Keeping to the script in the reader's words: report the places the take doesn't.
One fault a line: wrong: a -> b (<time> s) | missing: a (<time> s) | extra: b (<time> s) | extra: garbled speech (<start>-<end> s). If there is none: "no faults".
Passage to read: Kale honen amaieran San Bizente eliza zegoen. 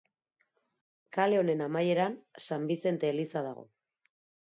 wrong: zegoen -> dago (3.5 s)